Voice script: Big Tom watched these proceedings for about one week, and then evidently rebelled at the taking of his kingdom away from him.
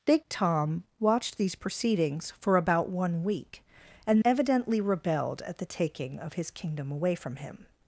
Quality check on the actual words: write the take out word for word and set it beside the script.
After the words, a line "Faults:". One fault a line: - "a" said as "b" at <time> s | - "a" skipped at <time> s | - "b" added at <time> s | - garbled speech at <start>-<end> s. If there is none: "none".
Big Tom watched these proceedings for about one week, and evidently rebelled at the taking of his kingdom away from him.
Faults:
- "then" skipped at 4.2 s